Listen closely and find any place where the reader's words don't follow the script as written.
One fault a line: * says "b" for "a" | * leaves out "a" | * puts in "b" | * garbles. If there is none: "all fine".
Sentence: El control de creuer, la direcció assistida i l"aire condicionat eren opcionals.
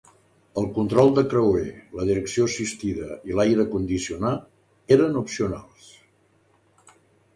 all fine